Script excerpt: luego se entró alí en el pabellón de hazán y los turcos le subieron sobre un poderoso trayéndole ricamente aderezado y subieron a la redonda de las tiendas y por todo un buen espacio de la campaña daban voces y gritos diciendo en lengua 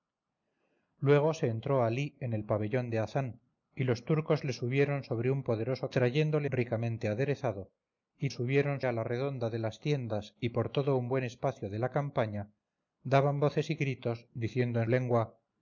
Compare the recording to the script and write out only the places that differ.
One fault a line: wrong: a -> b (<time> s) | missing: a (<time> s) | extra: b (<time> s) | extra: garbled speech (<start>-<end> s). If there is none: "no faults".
no faults